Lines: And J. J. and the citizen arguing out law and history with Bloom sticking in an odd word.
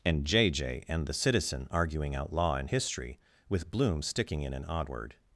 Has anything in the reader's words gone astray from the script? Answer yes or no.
no